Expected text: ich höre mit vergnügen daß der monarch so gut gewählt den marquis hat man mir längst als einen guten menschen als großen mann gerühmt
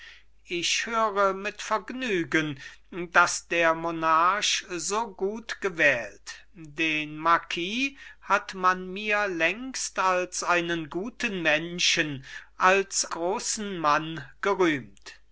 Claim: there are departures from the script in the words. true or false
false